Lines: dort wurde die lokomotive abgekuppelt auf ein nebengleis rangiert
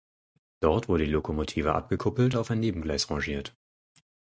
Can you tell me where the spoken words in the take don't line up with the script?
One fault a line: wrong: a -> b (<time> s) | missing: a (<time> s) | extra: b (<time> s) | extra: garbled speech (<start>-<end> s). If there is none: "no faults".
no faults